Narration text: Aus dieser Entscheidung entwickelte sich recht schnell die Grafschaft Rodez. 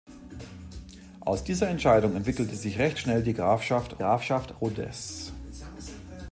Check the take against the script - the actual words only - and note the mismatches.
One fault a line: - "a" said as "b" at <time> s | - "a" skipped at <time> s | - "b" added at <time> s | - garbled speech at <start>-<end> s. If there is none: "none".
- "Grafschaft" added at 4.0 s